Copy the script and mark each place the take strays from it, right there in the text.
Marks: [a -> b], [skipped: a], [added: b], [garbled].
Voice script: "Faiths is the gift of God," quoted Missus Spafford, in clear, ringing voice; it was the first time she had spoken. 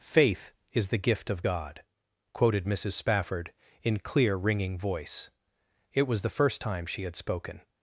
["Faiths -> Faith] is the gift of God," quoted Missus Spafford, in clear, ringing voice; it was the first time she had spoken.